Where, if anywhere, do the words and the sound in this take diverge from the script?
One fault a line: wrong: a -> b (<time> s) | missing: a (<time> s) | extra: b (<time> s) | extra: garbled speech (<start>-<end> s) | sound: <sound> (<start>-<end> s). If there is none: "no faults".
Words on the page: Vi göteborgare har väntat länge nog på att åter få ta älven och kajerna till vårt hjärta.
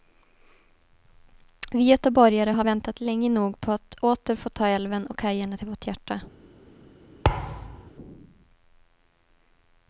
sound: thud (7.2-7.9 s)